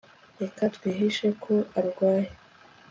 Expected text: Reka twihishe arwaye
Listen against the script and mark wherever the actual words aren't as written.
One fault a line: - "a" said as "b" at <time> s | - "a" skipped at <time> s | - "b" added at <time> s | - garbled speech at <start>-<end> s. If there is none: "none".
- "ko" added at 1.4 s